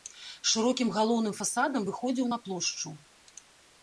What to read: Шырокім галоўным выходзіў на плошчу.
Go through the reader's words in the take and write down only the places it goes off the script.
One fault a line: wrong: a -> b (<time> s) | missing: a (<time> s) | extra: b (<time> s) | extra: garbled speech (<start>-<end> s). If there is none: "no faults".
extra: фасадам (1.4 s)